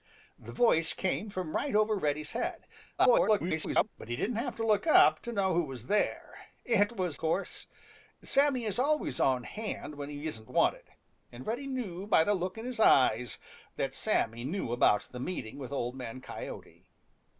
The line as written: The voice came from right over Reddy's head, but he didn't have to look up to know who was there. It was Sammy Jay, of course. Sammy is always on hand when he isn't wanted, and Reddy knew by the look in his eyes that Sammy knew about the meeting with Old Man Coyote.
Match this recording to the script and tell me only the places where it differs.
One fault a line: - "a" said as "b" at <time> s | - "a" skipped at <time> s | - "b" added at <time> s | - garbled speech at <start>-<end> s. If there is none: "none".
- garbled speech at 3.0-3.9 s
- "Sammy Jay of" skipped at 7.2 s